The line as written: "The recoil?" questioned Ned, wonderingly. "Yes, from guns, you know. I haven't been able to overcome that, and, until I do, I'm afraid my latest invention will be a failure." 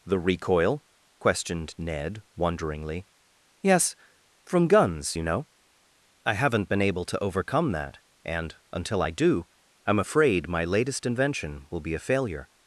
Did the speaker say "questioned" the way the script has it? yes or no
yes